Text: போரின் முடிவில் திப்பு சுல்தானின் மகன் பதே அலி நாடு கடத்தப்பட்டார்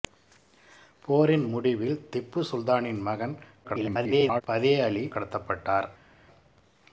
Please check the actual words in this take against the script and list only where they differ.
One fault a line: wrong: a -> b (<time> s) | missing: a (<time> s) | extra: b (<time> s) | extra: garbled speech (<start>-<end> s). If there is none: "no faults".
extra: garbled speech (3.6-4.4 s)
missing: நாடு (5.1 s)